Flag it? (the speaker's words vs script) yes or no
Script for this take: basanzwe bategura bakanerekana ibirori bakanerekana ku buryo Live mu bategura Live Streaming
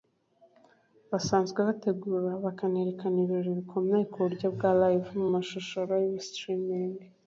yes